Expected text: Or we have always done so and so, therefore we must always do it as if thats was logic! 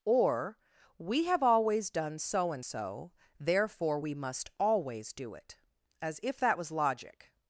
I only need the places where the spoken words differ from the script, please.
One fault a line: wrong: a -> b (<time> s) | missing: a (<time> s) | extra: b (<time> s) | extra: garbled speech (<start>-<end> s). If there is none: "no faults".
wrong: thats -> that (6.4 s)